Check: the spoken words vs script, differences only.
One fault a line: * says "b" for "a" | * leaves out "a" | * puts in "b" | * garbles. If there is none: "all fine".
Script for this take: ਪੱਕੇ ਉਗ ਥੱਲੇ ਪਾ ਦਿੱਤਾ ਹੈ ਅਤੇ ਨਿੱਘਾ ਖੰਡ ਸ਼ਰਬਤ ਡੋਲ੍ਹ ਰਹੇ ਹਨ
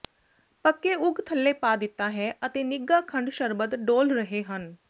all fine